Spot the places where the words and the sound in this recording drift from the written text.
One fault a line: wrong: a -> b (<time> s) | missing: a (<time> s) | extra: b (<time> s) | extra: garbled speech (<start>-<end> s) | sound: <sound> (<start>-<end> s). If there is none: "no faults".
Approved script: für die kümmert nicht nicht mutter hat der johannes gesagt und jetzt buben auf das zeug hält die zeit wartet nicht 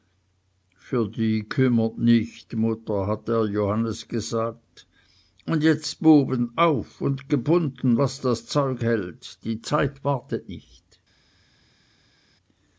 missing: nicht (2.5 s)
extra: und gebunden was (7.0 s)